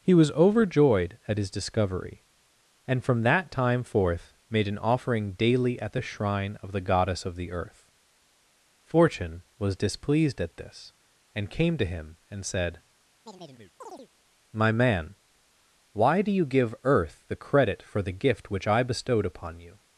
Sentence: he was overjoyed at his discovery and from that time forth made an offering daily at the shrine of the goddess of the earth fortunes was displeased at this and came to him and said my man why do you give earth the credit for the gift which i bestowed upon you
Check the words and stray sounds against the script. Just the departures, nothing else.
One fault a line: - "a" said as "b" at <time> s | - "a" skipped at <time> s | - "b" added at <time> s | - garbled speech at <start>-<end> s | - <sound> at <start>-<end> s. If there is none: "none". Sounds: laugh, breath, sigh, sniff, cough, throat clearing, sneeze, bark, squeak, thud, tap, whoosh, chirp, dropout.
- "fortunes" said as "fortune" at 8.8 s
- chirp at 13.3-14.1 s